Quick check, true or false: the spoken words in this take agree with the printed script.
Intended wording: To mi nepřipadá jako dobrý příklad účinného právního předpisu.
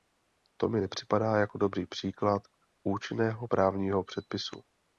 true